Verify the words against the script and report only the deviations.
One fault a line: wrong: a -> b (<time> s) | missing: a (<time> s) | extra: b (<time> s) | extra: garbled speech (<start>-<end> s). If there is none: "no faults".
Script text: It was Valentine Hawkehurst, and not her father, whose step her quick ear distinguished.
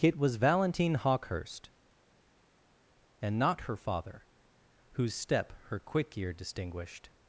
no faults